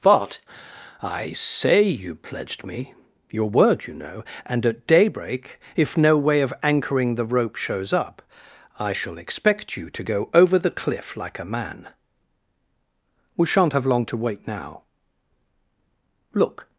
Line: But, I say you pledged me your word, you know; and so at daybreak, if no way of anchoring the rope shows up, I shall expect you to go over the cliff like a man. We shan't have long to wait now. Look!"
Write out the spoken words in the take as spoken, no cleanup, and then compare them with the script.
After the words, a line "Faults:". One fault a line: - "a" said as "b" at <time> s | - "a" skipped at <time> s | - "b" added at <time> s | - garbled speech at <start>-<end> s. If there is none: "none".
But, I say you pledged me your word, you know; and at daybreak, if no way of anchoring the rope shows up, I shall expect you to go over the cliff like a man. We shan't have long to wait now. Look!"
Faults:
- "so" skipped at 4.7 s